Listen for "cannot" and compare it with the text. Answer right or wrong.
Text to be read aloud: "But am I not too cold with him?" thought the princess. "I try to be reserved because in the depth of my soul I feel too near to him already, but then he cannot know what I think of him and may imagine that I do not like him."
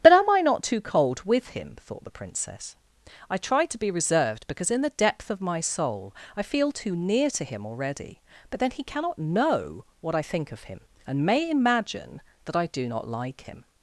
right